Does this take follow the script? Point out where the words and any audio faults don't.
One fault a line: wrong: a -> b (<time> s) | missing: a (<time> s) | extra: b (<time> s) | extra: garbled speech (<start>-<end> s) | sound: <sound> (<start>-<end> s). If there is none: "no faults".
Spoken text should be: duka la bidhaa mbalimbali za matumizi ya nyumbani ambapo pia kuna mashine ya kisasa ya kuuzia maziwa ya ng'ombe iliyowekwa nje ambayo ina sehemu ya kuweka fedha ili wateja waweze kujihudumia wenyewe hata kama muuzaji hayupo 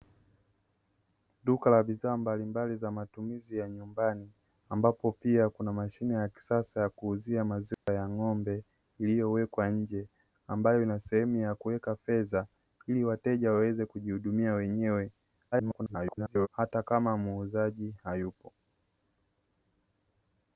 sound: dropout (7.7-7.9 s)
extra: garbled speech (15.5-16.5 s)